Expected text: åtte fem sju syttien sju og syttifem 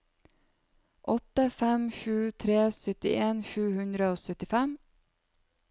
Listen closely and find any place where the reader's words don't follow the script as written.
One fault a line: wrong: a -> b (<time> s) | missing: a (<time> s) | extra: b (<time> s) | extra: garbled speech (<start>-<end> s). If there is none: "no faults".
extra: tre (2.4 s)
extra: hundre (3.8 s)